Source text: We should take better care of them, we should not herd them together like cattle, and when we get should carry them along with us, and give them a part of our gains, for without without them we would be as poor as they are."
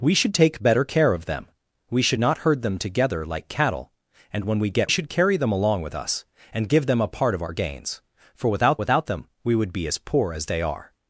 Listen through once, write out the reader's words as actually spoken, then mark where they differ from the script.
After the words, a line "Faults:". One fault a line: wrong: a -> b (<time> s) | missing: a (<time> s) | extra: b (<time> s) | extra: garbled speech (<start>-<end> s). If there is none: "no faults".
We should take better care of them, we should not herd them together like cattle, and when we get should carry them along with us, and give them a part of our gains, for without without them we would be as poor as they are."
Faults:
no faults